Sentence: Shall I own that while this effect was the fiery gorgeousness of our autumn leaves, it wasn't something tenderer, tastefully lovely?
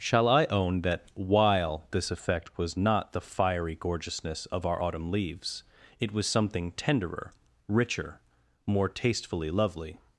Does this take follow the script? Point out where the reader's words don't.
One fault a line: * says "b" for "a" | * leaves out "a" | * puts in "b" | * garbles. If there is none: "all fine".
* puts in "not"
* says "was" for "wasn't"
* puts in "richer more"